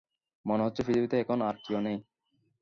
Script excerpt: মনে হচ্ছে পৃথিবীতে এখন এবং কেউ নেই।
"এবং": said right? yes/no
no